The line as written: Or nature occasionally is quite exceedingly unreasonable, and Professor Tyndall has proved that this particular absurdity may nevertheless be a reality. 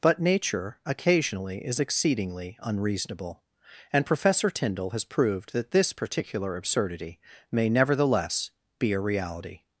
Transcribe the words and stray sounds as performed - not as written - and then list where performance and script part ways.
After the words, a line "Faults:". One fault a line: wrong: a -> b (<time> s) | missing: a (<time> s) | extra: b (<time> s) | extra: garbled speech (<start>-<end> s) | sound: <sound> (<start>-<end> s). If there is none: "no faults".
But nature occasionally is exceedingly unreasonable, and Professor Tyndall has proved that this particular absurdity may nevertheless be a reality.
Faults:
wrong: Or -> But (0.0 s)
missing: quite (1.8 s)